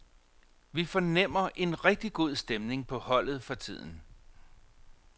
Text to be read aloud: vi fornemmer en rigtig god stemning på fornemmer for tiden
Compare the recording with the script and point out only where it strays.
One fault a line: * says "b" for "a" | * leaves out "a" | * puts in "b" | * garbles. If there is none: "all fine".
* says "holdet" for "fornemmer"